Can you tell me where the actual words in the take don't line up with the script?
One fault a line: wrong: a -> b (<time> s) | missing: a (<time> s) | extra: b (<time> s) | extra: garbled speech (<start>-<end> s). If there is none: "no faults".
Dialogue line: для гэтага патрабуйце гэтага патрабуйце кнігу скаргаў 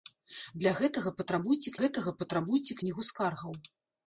no faults